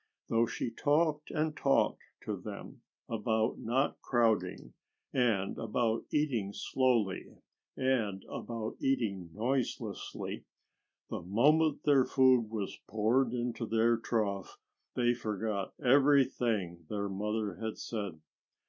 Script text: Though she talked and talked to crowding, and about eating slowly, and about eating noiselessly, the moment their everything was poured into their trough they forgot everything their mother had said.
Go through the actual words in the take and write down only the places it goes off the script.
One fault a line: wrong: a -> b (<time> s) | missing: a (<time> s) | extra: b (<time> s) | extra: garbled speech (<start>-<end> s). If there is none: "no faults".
extra: them about not (2.4 s)
wrong: everything -> food (12.1 s)